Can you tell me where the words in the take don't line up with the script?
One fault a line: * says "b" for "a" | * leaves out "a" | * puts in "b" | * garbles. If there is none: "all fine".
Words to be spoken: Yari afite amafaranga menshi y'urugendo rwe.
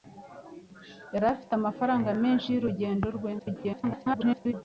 * garbles